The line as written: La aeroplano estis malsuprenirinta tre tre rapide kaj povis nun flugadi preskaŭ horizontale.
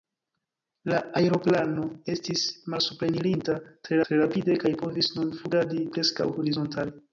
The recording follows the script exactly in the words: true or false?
true